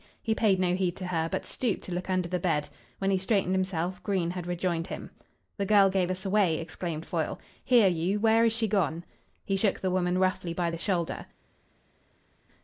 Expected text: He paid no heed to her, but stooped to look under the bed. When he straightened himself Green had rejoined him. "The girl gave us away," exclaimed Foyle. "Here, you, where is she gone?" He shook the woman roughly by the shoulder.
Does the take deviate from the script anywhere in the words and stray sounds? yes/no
no